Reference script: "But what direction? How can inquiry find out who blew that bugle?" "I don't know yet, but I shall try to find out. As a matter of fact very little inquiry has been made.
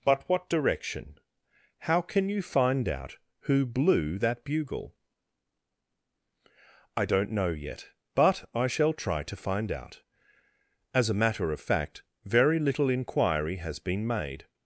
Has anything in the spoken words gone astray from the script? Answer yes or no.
yes